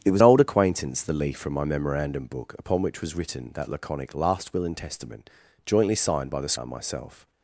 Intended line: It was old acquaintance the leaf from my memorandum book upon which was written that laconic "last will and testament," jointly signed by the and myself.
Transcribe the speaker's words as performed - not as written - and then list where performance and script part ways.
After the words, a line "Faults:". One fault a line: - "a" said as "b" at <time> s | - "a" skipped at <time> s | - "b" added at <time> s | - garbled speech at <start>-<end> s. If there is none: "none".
It was old acquaintance the leaf from my memorandum book upon which was written that laconic "last will and testament," jointly signed by the and myself.
Faults:
none